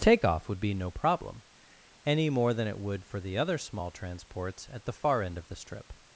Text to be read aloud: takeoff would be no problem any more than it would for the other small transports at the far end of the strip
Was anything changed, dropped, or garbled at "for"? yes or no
no